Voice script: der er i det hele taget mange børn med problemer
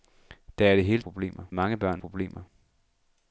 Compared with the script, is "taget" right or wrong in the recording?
wrong